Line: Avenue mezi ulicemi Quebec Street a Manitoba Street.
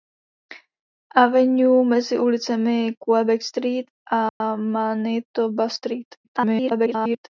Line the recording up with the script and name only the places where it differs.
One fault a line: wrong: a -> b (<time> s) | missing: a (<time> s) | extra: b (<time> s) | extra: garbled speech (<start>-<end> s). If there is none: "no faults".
extra: garbled speech (6.2-7.3 s)